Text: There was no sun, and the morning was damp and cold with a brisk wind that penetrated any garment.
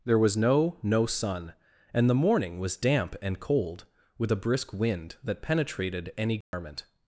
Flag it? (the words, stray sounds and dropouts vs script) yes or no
yes